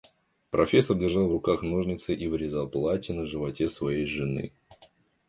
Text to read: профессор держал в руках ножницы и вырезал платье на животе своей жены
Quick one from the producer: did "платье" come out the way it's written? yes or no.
yes